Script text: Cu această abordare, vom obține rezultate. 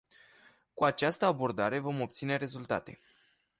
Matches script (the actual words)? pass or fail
pass